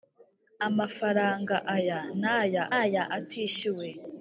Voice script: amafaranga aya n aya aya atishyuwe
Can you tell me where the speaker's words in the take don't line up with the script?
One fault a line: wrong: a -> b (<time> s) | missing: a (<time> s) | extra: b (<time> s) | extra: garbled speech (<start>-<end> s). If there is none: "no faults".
no faults